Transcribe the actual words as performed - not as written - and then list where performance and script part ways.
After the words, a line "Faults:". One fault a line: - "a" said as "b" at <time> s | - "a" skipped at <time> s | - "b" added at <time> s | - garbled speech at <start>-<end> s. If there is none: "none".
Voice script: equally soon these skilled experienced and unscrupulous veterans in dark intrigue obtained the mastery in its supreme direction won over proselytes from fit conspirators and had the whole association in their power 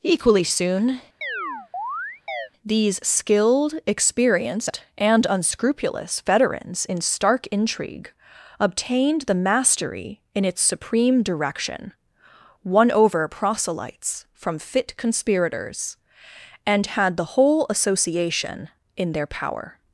equally soon these skilled experienced and unscrupulous veterans in stark intrigue obtained the mastery in its supreme direction won over proselytes from fit conspirators and had the whole association in their power
Faults:
- "dark" said as "stark" at 7.0 s